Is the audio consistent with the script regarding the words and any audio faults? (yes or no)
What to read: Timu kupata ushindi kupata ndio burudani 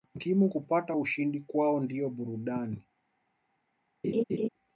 no